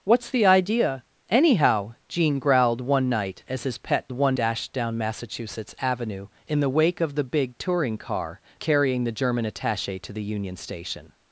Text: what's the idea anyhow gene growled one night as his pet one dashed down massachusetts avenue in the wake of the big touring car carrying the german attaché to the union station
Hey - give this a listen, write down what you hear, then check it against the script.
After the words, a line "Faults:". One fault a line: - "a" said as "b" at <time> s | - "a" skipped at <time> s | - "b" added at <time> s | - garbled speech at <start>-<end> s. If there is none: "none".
what's the idea anyhow gene growled one night as his pet one dashed down massachusetts avenue in the wake of the big touring car carrying the german attaché to the union station
Faults:
none